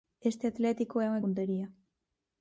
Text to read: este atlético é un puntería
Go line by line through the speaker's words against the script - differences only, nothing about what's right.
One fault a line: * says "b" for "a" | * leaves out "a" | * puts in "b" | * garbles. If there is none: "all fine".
all fine